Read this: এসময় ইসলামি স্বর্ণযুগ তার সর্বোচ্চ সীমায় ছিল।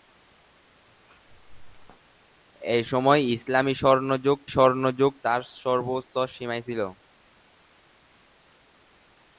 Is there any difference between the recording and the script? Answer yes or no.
yes